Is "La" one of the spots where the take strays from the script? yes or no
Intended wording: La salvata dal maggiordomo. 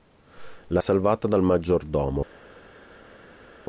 no